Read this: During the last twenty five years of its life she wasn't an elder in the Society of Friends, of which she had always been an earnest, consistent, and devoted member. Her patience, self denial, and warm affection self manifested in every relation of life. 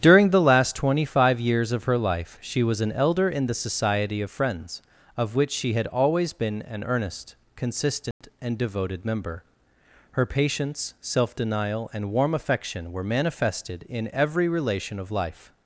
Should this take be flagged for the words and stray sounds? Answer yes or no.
yes